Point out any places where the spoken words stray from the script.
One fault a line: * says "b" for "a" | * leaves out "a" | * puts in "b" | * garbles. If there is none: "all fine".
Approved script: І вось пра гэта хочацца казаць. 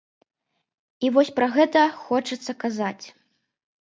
all fine